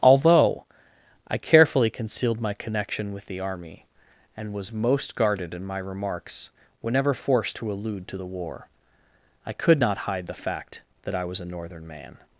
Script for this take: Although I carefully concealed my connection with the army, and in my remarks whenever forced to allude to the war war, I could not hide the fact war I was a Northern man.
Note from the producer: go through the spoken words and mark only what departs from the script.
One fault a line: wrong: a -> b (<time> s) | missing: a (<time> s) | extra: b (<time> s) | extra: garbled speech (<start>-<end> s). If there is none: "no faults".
extra: was most guarded (4.5 s)
missing: war (8.7 s)
wrong: war -> that (11.1 s)